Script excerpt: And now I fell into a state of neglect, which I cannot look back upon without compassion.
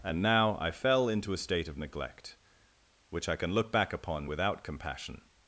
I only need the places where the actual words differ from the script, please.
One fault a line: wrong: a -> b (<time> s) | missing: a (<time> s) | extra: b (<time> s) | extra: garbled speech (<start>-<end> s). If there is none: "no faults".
wrong: cannot -> can (3.4 s)